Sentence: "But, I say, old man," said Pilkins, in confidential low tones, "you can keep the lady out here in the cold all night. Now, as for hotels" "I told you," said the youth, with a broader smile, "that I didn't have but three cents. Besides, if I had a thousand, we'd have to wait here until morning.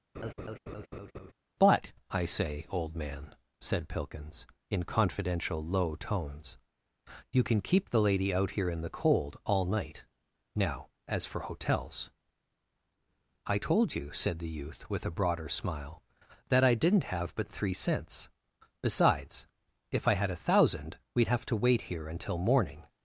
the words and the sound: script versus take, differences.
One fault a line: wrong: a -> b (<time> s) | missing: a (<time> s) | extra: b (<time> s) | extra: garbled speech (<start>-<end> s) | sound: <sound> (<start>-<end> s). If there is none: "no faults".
sound: laugh (0.1-1.3 s)